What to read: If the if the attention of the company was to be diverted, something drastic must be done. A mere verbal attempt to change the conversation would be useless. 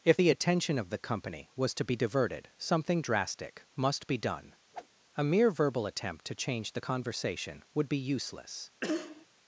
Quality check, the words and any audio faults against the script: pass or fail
fail